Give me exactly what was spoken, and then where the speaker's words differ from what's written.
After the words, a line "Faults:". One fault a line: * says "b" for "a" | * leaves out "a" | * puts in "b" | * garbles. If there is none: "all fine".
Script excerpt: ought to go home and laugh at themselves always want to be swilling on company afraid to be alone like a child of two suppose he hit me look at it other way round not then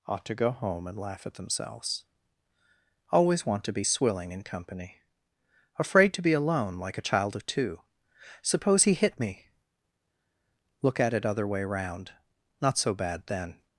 ought to go home and laugh at themselves always want to be swilling in company afraid to be alone like a child of two suppose he hit me look at it other way round not so bad then
Faults:
* says "in" for "on"
* puts in "so bad"